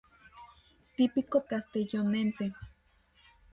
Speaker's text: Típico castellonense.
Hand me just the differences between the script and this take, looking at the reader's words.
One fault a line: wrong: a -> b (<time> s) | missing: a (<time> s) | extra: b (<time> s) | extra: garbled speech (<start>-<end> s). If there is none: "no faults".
no faults